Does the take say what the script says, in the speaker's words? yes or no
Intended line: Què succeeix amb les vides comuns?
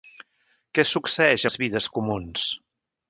no